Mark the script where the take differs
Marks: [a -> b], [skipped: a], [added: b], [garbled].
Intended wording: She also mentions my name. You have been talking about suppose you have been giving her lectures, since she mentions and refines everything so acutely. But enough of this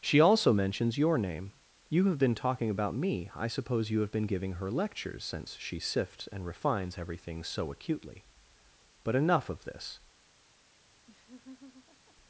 She also mentions [my -> your] name. You have been talking about [added: me I] suppose you have been giving her lectures, since she [mentions -> sifts] and refines everything so acutely. But enough of this